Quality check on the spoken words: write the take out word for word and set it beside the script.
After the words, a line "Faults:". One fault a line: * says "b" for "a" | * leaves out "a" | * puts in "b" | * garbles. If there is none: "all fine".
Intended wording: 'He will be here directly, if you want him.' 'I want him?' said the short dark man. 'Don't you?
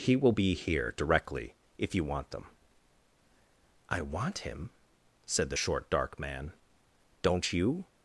'He will be here directly, if you want them.' 'I want him?' said the short dark man. 'Don't you?
Faults:
* says "them" for "him"